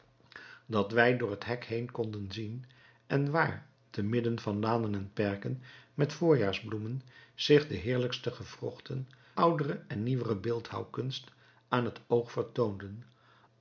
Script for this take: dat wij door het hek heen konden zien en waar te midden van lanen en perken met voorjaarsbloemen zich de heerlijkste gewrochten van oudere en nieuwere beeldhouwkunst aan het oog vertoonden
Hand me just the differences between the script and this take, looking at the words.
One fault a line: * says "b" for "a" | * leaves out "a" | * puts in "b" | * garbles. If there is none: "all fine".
* leaves out "van"